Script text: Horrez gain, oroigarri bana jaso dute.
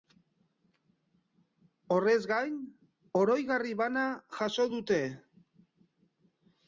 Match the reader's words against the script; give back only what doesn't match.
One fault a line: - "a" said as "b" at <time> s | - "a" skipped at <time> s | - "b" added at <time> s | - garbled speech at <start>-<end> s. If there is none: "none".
none